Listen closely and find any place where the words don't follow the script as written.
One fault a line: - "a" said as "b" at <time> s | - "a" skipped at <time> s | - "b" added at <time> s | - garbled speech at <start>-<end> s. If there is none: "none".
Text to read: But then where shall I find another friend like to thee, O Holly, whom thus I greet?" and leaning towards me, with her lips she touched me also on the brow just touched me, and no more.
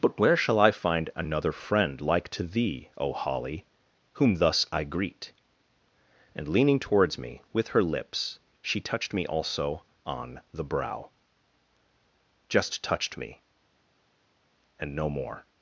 - "then" skipped at 0.2 s